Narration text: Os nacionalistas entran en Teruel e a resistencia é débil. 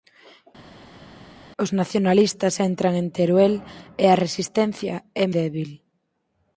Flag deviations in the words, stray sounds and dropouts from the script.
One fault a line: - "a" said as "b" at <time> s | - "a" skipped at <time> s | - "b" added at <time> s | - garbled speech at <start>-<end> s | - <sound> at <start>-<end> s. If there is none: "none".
none